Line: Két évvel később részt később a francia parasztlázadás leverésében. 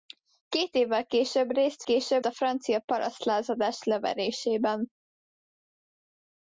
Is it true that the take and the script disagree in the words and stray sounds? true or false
false